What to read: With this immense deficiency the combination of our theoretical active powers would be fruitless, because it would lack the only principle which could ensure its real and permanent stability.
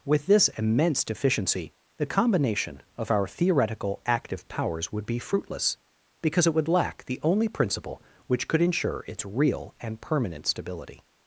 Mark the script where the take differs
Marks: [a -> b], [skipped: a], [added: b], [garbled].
With this immense deficiency the combination of our theoretical active powers would be fruitless, because it would lack the only principle which could ensure its real and permanent stability.